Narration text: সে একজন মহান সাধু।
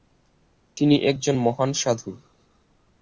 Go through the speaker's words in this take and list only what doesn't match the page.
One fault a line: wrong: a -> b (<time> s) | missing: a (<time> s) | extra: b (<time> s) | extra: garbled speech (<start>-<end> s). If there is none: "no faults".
wrong: সে -> তিনি (0.8 s)